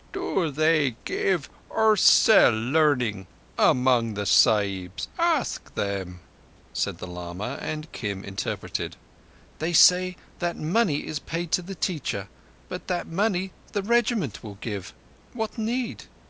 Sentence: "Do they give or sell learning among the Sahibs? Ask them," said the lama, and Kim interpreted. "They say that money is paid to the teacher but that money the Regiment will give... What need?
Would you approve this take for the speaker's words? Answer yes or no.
yes